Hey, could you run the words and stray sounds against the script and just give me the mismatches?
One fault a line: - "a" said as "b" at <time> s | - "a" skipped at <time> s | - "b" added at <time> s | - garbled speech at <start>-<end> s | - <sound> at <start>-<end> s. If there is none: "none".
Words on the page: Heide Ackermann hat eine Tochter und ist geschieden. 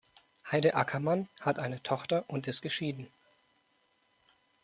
none